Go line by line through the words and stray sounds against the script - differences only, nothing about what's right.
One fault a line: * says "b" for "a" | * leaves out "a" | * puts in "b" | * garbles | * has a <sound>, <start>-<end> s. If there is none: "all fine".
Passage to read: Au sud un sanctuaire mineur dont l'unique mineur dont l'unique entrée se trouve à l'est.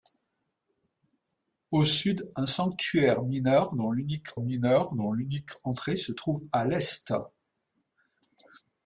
all fine